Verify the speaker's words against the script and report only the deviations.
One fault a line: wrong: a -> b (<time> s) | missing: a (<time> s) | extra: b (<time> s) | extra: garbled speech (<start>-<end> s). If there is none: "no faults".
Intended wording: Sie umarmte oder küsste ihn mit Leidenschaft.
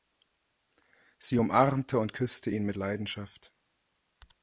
wrong: oder -> und (2.0 s)